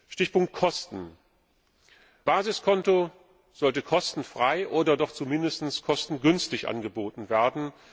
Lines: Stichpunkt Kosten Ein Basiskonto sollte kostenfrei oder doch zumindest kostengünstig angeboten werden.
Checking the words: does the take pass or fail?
fail